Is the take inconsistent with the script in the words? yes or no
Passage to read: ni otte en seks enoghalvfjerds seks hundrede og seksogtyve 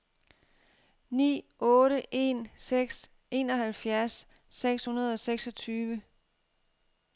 no